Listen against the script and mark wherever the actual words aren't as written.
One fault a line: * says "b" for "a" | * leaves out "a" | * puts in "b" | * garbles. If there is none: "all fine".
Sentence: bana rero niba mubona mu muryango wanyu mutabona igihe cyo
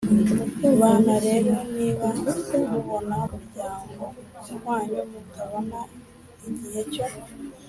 * leaves out "mu"